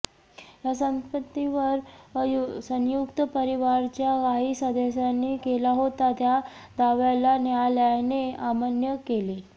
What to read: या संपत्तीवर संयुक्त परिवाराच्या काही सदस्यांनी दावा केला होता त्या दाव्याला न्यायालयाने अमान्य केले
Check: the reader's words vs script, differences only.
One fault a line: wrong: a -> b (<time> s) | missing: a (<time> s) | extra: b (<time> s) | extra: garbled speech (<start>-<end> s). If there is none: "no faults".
missing: दावा (5.4 s)